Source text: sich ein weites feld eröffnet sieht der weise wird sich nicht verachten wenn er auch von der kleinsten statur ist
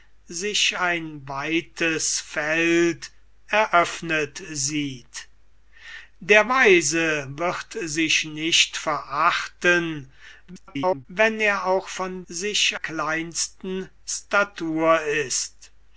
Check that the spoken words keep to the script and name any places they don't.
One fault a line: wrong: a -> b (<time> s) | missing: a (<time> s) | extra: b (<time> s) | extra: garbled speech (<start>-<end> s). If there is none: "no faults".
extra: garbled speech (10.5-11.1 s)
wrong: der -> sich (12.3 s)